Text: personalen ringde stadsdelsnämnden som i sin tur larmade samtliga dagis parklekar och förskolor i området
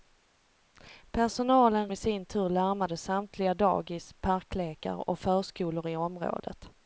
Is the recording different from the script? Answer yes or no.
yes